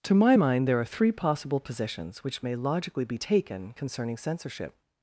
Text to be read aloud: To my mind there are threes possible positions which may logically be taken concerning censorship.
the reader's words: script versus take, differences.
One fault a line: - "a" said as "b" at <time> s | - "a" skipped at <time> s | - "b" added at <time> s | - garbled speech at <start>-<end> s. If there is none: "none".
- "threes" said as "three" at 0.8 s